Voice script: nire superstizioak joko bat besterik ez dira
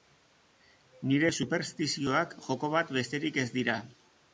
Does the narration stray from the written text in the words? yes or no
no